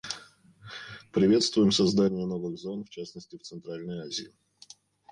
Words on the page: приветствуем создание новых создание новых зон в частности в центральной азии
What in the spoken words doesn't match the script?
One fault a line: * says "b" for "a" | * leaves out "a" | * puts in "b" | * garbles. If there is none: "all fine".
* leaves out "создание новых"